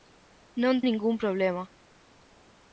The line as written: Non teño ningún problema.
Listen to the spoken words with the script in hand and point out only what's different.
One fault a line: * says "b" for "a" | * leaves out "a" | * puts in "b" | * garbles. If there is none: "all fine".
* leaves out "teño"